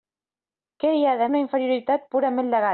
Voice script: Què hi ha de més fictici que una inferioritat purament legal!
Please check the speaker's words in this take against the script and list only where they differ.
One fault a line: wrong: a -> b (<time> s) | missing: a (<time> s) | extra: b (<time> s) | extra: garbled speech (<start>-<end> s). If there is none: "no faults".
missing: més fictici que (1.3 s)